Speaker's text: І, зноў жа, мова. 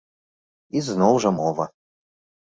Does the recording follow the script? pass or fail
pass